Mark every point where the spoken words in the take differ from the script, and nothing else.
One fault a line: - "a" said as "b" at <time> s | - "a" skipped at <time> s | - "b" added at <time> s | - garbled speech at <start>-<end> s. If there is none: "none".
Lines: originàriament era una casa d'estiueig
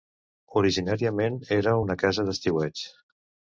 none